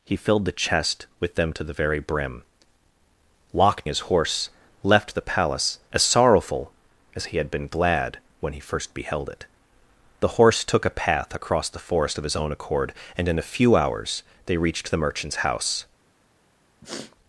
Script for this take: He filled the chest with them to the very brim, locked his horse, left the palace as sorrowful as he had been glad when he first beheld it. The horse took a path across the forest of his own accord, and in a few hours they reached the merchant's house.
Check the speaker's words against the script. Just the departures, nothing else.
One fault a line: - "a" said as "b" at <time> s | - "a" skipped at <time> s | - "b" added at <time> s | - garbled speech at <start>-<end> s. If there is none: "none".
none